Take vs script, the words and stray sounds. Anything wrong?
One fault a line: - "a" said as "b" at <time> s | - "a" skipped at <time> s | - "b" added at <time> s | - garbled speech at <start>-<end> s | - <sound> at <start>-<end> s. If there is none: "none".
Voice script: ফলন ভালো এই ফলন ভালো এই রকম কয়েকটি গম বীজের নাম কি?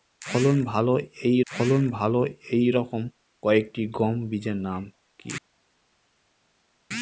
none